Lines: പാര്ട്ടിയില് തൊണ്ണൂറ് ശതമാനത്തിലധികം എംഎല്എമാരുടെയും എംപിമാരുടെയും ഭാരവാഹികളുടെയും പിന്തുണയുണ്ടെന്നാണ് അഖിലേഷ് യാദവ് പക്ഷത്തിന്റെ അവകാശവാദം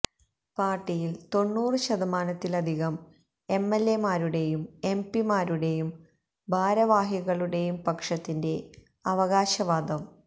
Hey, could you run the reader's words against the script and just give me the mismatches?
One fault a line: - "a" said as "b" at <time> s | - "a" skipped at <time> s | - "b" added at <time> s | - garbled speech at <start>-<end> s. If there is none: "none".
- "പിന്തുണയുണ്ടെന്നാണ് അഖിലേഷ് യാദവ്" skipped at 7.8 s